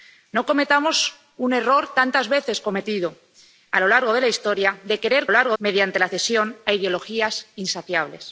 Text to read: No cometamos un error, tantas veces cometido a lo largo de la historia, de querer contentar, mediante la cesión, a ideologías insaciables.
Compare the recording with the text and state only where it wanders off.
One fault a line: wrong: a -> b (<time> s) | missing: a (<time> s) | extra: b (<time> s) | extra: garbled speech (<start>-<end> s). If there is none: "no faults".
wrong: contentar -> largo (5.3 s)